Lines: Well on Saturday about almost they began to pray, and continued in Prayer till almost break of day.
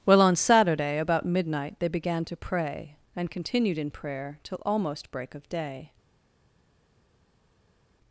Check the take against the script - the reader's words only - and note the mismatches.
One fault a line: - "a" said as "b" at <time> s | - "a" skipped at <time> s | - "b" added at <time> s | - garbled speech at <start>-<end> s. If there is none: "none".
- "almost" said as "midnight" at 1.3 s